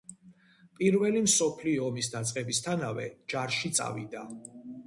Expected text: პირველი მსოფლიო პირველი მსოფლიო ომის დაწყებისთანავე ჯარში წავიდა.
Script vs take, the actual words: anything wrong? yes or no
yes